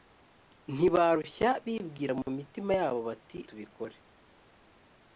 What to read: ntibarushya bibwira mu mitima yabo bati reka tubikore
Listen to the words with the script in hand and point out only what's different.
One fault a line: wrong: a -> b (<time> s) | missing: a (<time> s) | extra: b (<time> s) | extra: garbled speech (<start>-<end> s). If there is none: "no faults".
missing: reka (3.4 s)